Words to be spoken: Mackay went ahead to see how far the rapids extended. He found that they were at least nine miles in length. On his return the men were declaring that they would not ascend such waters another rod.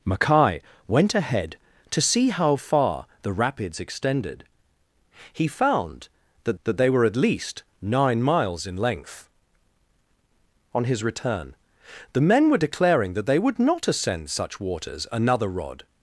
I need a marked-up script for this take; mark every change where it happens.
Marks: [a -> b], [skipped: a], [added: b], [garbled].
Mackay went ahead to see how far the rapids extended. He found that [added: that] they were at least nine miles in length. On his return the men were declaring that they would not ascend such waters another rod.